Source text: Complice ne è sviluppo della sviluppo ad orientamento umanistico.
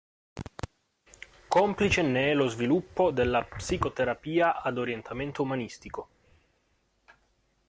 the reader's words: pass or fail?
fail